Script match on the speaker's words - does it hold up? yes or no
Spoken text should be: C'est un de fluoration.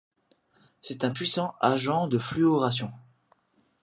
no